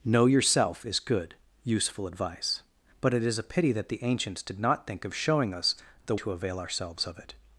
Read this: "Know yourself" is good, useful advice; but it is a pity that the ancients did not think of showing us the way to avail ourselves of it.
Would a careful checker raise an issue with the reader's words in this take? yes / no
yes